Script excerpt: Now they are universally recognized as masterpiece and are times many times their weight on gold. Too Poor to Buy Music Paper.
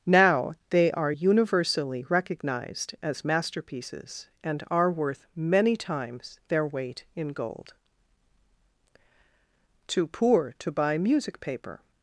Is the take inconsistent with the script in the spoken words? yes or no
yes